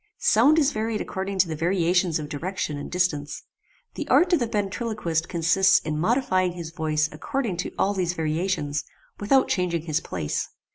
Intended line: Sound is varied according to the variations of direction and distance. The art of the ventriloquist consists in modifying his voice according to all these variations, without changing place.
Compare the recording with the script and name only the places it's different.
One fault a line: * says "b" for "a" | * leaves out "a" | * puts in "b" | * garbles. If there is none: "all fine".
* puts in "his"